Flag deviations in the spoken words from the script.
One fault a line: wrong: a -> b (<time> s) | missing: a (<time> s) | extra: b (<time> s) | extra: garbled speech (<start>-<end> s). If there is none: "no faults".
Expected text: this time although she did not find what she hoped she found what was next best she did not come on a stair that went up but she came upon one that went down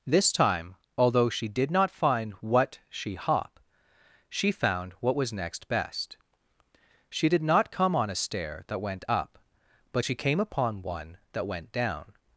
wrong: hoped -> hop (3.1 s)